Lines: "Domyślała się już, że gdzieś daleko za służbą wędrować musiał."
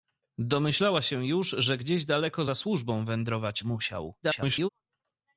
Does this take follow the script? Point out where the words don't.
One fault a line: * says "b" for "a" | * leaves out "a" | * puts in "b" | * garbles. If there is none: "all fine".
* garbles